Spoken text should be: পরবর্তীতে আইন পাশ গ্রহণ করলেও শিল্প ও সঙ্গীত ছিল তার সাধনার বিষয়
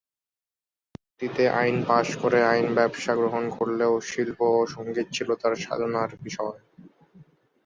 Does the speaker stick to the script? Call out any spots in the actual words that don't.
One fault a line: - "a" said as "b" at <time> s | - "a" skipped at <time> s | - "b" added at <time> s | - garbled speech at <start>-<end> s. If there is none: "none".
- "করে আইন ব্যবসা" added at 2.2 s